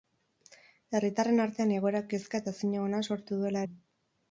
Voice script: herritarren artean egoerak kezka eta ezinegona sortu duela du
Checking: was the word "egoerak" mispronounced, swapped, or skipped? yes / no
no